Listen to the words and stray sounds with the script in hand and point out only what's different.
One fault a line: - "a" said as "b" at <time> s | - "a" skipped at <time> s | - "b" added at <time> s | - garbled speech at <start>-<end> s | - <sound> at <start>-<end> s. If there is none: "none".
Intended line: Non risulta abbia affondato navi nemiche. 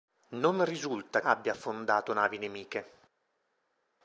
none